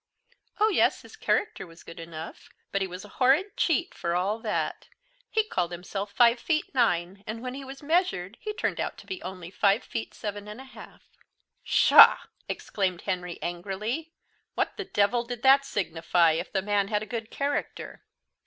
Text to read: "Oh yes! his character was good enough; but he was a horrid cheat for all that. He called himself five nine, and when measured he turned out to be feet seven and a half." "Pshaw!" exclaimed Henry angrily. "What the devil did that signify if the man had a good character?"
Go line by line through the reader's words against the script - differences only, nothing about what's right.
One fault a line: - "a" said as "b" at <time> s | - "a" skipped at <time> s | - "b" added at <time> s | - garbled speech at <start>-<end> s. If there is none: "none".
- "feet" added at 6.4 s
- "he was" added at 7.5 s
- "only five" added at 9.2 s